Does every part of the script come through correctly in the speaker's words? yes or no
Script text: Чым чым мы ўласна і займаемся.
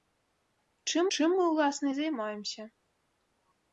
yes